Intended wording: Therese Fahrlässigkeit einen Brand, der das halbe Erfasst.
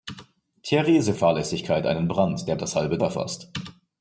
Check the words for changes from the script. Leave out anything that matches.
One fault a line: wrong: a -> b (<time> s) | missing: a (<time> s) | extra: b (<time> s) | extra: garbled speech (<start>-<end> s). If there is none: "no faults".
no faults